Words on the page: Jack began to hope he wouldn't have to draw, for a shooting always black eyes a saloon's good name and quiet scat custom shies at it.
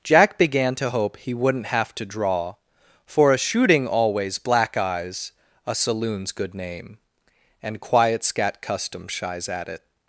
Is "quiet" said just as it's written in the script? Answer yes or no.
yes